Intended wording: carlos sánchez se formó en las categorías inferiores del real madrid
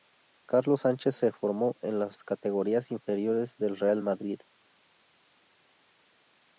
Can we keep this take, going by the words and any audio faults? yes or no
yes